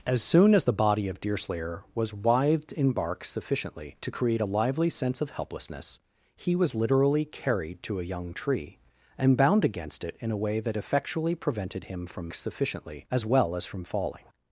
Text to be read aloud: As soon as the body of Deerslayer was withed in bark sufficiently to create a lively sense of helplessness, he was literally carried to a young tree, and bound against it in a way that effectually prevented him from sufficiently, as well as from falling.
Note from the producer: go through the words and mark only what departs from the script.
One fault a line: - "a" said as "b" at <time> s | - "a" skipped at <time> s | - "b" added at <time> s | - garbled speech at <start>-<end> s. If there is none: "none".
none